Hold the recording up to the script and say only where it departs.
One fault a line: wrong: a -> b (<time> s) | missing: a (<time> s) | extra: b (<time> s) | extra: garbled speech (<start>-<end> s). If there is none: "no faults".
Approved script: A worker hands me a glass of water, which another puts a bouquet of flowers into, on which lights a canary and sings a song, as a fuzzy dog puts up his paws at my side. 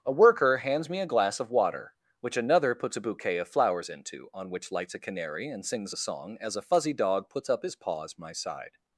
missing: at (8.2 s)